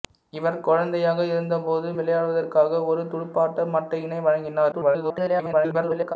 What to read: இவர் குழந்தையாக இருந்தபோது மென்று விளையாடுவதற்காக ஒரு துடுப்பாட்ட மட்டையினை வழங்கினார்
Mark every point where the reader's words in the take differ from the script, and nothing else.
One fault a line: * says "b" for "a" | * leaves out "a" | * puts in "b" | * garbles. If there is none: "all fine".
* leaves out "மென்று"
* garbles